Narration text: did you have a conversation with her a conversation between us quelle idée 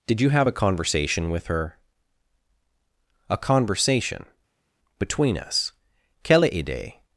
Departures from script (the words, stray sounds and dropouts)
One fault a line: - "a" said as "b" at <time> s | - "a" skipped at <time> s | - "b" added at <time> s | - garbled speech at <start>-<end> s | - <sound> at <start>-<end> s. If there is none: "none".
none